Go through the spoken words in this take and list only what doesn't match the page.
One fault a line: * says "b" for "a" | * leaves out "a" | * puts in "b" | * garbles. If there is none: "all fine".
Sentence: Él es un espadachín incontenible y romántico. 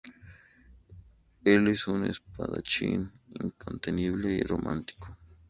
all fine